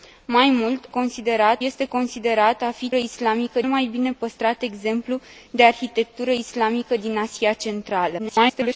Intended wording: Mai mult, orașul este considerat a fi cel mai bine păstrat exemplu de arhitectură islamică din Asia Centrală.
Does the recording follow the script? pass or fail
fail